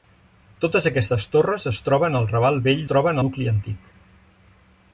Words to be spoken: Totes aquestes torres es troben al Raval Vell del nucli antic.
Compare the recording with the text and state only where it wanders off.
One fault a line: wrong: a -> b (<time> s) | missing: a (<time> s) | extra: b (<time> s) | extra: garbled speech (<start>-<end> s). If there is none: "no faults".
wrong: del -> troben (2.9 s)